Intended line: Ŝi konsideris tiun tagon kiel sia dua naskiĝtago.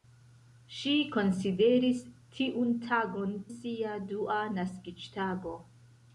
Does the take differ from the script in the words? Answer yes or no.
yes